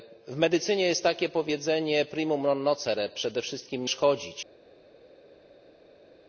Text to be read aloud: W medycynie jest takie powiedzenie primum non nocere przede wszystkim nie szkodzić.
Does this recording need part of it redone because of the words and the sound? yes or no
yes